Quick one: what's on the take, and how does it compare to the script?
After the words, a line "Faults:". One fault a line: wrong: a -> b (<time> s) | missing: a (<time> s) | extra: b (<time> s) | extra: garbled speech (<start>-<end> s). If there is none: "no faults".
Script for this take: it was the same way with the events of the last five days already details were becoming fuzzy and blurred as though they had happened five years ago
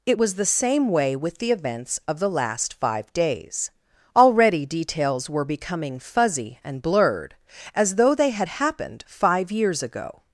it was the same way with the events of the last five days already details were becoming fuzzy and blurred as though they had happened five years ago
Faults:
no faults